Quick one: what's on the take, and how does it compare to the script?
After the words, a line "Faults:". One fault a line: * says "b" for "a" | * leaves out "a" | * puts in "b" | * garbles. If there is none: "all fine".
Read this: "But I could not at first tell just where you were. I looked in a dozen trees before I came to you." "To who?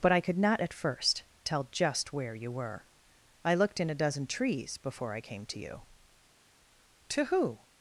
"But I could not at first tell just where you were. I looked in a dozen trees before I came to you." "To who?
Faults:
all fine